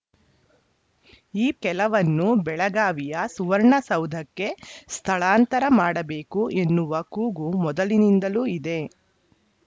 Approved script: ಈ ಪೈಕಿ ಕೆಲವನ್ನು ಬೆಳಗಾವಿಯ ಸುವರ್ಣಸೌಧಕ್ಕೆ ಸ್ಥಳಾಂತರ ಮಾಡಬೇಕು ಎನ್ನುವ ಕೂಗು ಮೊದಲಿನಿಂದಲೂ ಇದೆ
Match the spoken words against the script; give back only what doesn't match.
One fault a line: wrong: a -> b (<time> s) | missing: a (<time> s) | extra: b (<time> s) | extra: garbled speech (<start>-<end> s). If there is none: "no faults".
missing: ಪೈಕಿ (1.5 s)